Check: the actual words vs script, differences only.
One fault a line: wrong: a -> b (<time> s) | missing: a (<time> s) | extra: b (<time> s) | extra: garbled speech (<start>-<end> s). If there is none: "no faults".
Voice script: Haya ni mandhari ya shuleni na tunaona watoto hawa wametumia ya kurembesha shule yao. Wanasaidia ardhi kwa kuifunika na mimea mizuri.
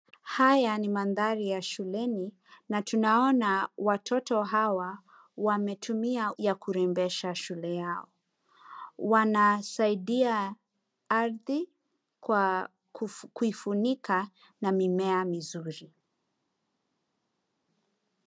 no faults